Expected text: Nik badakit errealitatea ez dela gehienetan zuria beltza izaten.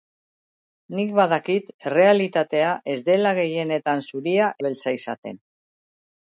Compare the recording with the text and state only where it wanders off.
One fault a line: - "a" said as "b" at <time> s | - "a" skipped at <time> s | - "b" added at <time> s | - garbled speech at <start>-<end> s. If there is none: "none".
none